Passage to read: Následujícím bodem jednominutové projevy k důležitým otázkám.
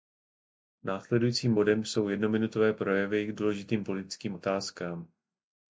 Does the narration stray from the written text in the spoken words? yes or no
yes